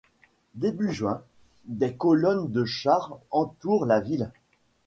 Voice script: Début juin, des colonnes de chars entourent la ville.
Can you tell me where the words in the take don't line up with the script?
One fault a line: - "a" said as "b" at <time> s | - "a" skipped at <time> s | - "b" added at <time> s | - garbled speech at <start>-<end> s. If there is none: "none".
none